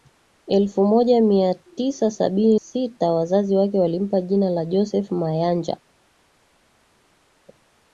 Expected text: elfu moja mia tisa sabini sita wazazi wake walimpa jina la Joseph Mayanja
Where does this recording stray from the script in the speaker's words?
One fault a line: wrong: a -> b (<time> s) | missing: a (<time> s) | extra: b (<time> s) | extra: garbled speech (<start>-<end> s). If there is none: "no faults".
no faults